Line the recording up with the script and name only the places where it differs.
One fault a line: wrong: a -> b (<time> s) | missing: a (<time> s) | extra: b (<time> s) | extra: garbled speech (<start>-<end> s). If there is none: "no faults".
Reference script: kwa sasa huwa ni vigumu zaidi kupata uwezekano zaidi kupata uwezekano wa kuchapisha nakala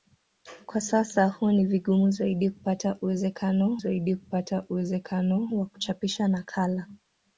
no faults